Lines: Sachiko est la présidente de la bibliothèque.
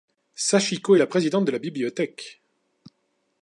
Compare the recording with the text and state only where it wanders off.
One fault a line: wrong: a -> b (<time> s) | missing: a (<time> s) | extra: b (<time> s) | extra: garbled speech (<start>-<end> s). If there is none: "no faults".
no faults